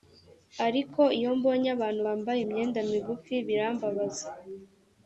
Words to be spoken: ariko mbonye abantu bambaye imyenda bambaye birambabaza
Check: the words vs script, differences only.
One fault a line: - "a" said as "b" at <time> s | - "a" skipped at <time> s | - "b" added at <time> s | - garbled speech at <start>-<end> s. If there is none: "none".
- "iyo" added at 1.2 s
- "bambaye" said as "migufi" at 2.9 s